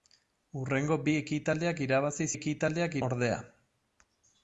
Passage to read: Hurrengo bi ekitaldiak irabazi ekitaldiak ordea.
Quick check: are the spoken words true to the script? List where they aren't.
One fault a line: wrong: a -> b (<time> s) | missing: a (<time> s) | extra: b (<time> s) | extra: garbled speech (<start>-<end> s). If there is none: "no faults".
no faults